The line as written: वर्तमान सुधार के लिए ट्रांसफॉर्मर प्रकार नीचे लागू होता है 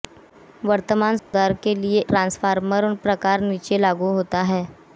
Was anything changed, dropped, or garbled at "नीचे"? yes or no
no